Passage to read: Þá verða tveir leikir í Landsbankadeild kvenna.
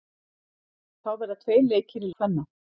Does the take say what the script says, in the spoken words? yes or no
no